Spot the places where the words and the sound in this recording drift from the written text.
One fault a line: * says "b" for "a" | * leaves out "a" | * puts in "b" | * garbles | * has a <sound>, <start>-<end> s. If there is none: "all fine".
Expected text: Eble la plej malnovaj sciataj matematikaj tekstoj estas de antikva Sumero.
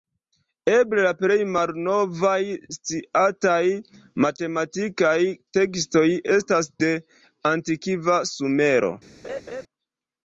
* has a laugh, 9.2-9.6 s